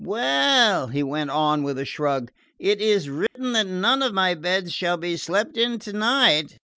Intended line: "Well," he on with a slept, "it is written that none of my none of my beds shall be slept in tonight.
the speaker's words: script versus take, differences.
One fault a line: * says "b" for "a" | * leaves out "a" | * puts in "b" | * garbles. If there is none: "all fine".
* puts in "went"
* says "shrug" for "slept"
* leaves out "none of my"